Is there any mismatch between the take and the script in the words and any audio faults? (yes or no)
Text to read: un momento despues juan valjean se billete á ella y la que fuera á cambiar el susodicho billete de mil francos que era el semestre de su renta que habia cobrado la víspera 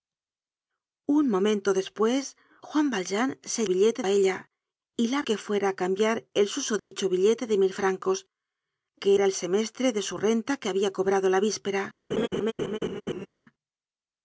yes